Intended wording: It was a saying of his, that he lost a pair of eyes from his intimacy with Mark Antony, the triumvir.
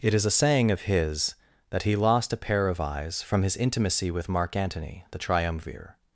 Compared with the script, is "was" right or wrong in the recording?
wrong